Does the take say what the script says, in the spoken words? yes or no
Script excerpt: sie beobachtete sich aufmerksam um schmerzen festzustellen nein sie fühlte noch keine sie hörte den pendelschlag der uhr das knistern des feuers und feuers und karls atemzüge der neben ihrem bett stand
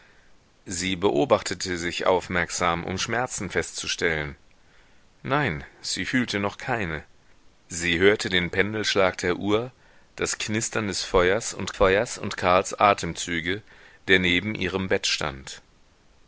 yes